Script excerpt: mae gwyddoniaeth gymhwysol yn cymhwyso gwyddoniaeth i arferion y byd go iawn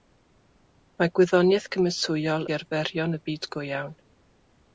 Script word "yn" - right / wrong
wrong